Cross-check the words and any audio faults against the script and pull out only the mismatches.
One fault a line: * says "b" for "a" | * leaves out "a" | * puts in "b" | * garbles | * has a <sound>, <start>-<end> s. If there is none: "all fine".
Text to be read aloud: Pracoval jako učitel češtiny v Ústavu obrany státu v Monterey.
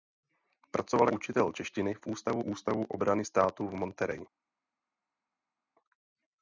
* leaves out "jako"
* puts in "Ústavu"